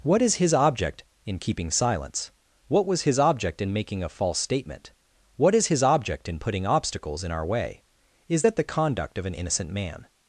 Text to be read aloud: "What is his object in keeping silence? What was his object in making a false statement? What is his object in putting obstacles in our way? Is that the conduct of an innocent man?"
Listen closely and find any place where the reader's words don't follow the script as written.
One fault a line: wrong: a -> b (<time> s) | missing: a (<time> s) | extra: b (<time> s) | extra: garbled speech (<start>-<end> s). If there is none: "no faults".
no faults